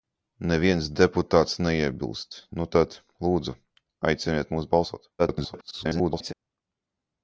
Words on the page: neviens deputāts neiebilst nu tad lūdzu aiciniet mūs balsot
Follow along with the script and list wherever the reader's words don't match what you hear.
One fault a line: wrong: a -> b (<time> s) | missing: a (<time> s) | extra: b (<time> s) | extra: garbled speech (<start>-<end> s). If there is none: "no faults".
extra: garbled speech (5.2-6.3 s)